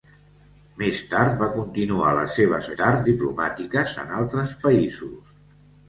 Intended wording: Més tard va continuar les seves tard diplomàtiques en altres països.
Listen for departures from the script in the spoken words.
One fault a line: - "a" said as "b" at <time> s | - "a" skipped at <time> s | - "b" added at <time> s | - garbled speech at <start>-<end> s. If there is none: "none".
none